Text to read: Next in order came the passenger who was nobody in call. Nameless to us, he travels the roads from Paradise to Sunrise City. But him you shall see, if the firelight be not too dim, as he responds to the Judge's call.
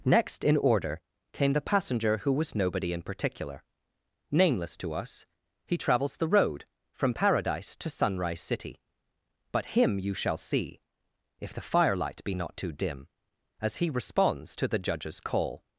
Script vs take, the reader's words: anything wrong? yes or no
yes